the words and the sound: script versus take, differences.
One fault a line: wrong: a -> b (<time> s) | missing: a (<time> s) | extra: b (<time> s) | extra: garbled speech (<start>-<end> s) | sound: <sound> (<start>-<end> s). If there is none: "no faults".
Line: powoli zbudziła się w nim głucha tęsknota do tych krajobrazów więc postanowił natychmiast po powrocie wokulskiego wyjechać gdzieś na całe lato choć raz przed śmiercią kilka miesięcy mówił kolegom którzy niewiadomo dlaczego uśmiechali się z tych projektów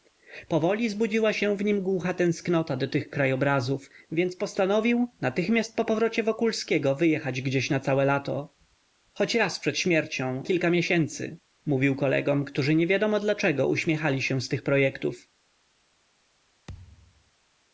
sound: thud (16.7-17.3 s)